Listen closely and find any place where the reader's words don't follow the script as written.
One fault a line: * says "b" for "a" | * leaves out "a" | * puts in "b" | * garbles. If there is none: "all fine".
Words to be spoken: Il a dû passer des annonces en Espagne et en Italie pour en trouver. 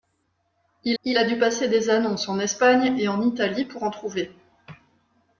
* puts in "il"